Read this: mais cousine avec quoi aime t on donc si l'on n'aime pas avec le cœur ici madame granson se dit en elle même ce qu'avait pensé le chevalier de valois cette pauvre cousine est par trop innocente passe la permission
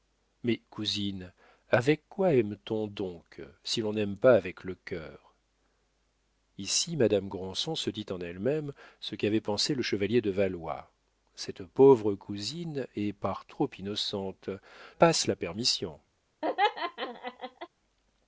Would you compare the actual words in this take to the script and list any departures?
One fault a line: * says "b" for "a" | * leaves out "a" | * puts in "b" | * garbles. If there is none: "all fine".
all fine